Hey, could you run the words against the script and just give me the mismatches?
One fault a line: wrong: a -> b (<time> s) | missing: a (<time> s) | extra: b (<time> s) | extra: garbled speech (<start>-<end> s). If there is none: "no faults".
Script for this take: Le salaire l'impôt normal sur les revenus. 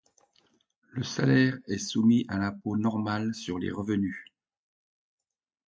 extra: est soumis à (1.7 s)